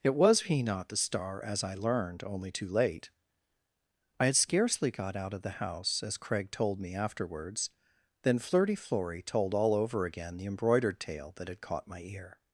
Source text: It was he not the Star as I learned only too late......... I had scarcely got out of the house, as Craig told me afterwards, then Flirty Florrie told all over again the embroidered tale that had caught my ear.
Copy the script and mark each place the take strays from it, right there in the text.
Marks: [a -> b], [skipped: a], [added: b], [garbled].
It was he not the Star as I learned only too late......... I had scarcely got out of the house, as Craig told me afterwards, then Flirty Florrie told all over again the embroidered tale that had caught my ear.